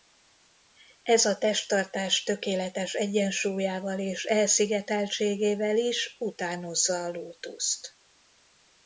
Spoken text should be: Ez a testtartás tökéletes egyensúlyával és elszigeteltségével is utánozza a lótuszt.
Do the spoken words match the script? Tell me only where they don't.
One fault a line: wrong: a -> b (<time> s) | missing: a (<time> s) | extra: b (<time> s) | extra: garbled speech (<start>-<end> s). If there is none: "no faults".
no faults